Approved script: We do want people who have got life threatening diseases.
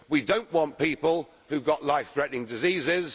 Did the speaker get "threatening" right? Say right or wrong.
right